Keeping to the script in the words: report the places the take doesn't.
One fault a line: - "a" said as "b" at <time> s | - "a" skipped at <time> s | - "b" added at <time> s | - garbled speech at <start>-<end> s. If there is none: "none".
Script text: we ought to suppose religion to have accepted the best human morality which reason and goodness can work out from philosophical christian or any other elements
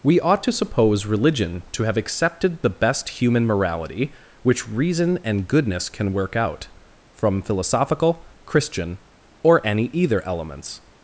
- "other" said as "either" at 9.9 s